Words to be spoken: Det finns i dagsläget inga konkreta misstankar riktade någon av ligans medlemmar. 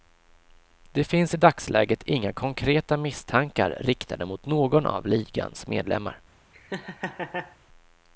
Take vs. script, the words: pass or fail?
fail